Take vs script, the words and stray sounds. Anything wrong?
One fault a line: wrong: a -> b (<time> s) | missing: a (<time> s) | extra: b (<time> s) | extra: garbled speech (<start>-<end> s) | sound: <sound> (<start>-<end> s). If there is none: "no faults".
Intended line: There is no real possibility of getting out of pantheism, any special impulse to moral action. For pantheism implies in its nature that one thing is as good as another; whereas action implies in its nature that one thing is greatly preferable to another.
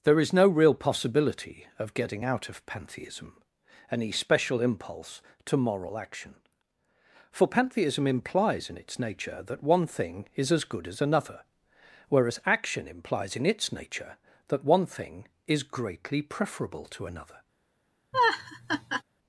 sound: laugh (18.1-19.0 s)